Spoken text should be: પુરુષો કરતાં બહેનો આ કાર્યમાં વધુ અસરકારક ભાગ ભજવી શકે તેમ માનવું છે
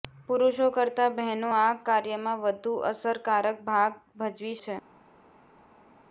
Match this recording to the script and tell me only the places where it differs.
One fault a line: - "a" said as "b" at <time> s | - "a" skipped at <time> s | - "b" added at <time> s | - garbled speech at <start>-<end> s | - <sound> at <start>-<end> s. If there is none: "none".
- "શકે તેમ માનવું" skipped at 4.6 s